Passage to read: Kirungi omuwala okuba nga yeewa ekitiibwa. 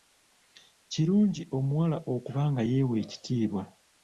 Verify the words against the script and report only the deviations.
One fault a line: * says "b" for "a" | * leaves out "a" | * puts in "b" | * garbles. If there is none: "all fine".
all fine